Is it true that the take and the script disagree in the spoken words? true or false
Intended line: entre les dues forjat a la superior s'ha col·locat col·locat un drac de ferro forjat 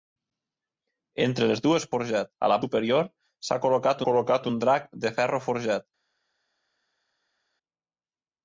false